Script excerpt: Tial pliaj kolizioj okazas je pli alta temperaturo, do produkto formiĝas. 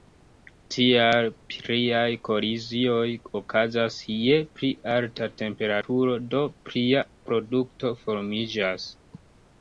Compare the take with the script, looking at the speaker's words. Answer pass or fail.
fail